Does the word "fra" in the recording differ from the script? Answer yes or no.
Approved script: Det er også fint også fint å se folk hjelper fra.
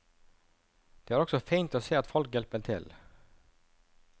yes